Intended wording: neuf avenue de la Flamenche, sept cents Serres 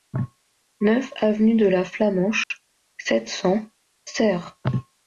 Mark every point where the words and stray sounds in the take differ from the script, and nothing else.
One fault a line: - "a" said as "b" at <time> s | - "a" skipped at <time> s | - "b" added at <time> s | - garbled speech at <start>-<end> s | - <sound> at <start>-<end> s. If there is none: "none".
- dropout at 2.4-2.5 s